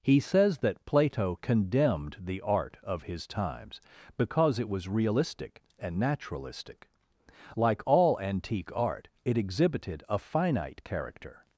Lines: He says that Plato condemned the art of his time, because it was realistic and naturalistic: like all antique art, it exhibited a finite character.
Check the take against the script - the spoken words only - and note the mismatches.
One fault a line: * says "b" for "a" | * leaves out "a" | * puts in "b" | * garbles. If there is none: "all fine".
* says "times" for "time"